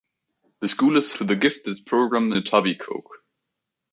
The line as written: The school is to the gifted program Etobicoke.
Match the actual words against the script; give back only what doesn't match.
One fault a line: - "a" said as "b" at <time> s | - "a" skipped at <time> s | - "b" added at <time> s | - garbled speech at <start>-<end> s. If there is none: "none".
none